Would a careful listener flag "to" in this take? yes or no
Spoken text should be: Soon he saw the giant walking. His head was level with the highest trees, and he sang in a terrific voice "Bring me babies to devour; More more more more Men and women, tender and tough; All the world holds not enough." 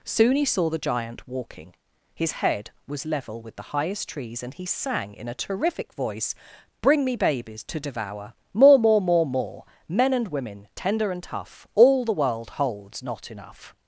no